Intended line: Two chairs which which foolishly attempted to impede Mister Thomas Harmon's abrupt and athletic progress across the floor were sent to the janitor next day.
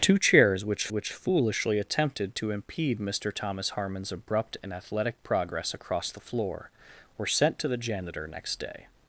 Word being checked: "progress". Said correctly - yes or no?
yes